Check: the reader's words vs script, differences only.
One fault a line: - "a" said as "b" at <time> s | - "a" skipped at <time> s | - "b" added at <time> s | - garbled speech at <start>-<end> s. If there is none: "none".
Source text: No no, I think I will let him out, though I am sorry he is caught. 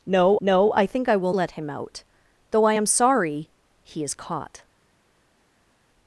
none